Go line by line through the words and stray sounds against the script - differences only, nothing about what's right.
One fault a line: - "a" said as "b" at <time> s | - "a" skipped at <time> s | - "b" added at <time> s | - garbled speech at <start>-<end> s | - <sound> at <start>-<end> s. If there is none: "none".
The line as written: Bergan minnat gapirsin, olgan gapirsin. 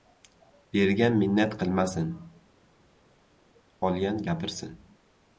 - "gapirsin" said as "qilmasin" at 1.6 s